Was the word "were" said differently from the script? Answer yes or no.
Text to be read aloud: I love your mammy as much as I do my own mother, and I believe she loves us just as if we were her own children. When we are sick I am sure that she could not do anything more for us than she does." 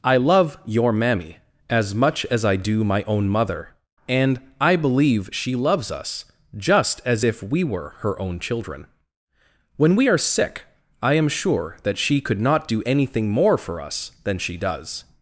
no